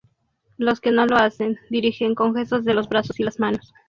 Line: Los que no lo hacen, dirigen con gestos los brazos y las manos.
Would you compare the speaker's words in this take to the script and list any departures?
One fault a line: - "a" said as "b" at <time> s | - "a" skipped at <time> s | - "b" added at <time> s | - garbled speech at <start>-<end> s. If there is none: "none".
- "de" added at 2.6 s